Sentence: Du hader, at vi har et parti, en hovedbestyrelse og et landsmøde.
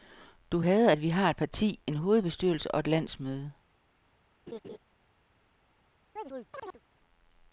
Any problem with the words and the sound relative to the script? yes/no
yes